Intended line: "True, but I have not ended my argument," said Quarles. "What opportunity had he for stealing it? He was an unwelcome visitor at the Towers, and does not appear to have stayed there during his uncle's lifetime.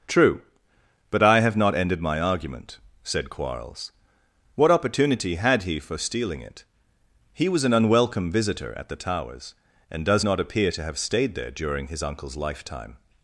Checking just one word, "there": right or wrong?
right